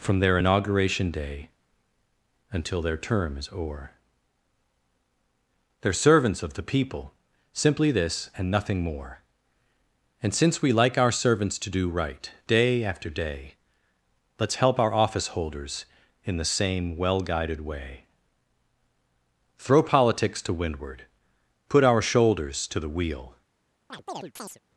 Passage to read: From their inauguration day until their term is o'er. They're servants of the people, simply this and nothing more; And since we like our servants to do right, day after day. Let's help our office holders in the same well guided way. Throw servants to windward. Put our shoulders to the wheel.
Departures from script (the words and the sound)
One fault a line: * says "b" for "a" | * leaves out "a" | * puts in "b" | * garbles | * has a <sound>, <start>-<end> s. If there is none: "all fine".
* says "politics" for "servants"
* has a chirp, 23.9-24.6 s